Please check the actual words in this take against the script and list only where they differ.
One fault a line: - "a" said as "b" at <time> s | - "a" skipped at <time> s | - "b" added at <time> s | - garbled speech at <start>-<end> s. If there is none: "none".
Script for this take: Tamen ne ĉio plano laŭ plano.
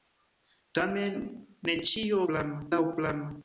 none